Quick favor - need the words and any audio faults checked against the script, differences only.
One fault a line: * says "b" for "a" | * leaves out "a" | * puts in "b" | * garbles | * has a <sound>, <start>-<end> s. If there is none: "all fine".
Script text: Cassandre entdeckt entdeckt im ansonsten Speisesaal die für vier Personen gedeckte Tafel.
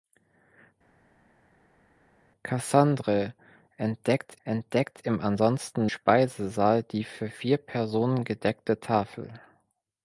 all fine